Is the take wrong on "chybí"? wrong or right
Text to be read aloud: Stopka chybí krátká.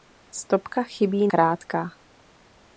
right